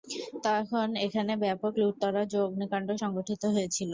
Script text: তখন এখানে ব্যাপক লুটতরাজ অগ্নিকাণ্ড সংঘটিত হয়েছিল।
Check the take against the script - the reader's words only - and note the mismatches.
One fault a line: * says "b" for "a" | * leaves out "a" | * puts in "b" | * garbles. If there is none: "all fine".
* puts in "ও"